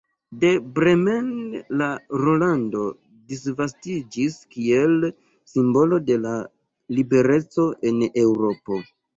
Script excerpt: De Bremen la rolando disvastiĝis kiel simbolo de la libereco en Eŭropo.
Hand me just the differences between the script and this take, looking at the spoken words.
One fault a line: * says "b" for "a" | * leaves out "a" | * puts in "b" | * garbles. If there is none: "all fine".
all fine